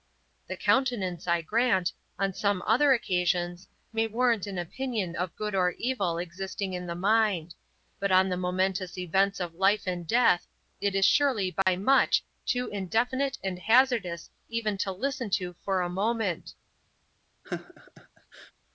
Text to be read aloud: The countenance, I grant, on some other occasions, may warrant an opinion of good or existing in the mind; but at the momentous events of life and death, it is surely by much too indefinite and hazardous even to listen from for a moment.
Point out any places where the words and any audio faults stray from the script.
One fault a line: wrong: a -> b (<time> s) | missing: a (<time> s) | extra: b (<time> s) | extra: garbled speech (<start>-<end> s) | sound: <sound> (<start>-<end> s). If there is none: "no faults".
extra: evil (5.8 s)
wrong: at -> on (8.1 s)
sound: dropout (11.6-11.7 s)
wrong: from -> to (15.3 s)
sound: laugh (17.4-18.5 s)